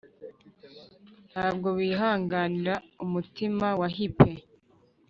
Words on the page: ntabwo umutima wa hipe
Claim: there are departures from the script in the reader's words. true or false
true